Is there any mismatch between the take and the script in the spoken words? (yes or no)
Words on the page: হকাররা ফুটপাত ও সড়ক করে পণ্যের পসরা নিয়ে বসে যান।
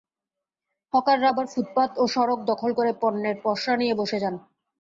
yes